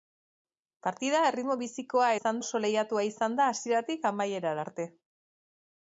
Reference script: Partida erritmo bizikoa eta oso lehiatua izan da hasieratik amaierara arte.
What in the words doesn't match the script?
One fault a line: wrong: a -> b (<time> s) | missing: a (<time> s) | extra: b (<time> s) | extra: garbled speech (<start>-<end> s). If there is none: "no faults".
wrong: eta -> izan (2.2 s)